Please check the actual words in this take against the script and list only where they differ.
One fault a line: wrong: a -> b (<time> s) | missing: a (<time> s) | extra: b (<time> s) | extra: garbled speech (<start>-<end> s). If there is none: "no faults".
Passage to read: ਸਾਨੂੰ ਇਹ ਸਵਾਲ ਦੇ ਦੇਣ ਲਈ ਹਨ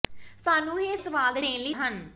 no faults